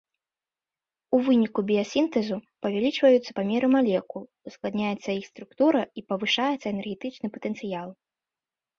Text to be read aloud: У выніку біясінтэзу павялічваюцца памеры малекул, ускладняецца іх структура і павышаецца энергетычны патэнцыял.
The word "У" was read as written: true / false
true